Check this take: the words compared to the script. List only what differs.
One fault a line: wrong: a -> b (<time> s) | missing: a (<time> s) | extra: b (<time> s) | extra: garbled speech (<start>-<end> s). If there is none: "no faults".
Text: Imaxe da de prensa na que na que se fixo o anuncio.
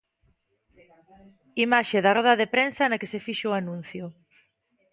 extra: roda (2.2 s)
missing: na que (3.1 s)